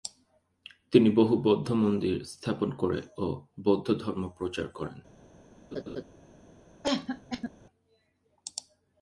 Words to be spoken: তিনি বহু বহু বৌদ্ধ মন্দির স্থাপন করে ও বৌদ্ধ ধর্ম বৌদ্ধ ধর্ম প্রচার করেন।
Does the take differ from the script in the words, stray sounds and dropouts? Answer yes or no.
yes